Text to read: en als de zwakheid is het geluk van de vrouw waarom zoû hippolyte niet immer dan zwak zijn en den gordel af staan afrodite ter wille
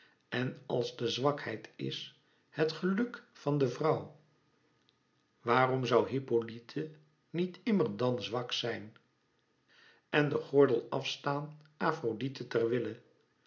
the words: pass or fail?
pass